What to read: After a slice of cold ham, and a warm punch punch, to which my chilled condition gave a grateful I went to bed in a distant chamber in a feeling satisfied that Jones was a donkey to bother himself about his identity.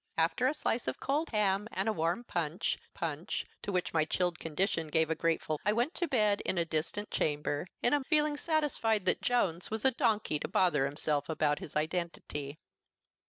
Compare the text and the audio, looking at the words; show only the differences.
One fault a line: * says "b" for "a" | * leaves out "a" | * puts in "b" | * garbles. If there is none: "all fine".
all fine